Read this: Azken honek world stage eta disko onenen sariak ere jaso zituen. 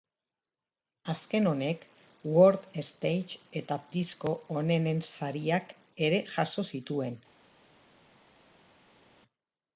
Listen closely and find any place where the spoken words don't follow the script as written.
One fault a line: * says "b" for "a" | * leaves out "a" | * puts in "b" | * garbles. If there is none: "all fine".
all fine